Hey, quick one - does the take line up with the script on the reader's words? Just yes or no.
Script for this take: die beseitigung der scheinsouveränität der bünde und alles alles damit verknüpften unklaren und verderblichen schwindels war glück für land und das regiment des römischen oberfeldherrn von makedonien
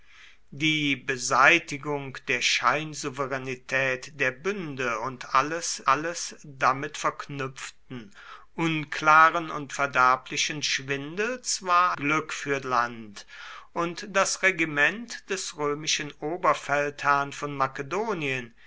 yes